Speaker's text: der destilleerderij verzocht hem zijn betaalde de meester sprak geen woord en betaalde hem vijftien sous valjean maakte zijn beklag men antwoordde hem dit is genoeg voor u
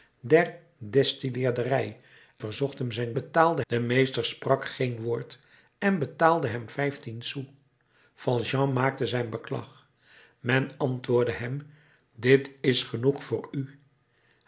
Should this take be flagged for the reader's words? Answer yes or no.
no